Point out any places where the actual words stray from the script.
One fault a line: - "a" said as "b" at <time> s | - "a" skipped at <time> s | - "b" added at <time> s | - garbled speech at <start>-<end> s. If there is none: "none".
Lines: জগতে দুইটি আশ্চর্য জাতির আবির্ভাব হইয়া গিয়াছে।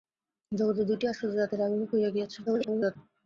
- garbled speech at 2.5-3.0 s